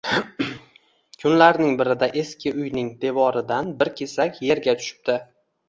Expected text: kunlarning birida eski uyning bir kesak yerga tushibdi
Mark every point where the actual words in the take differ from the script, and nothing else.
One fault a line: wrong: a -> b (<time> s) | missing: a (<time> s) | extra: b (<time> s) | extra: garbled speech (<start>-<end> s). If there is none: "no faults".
extra: devoridan (3.0 s)